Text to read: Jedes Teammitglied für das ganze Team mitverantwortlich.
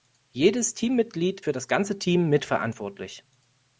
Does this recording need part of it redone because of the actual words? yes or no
no